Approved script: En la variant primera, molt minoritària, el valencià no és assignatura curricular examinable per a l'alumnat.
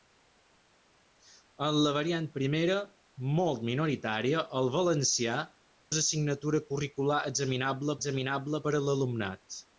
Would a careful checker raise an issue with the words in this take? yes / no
yes